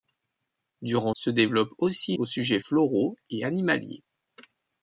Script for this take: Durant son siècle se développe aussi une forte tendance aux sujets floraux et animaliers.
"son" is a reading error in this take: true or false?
true